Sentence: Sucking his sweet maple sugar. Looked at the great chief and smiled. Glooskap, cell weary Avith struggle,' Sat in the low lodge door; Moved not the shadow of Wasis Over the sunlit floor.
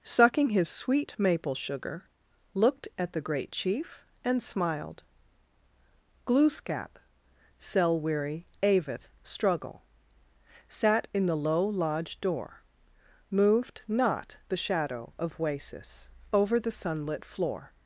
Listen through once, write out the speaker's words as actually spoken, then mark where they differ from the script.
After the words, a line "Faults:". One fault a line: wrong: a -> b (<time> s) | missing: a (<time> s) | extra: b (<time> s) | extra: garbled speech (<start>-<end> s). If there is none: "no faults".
Sucking his sweet maple sugar. Looked at the great chief and smiled. Glooskap, cell weary Avith struggle,' Sat in the low lodge door; Moved not the shadow of Wasis Over the sunlit floor.
Faults:
no faults